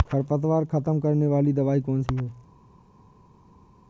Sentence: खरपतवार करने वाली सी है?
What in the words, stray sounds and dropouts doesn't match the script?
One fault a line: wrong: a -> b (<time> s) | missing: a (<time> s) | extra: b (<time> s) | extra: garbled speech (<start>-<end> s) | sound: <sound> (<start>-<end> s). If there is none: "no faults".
extra: खत्म (0.7 s)
extra: दवाई कौन (1.5 s)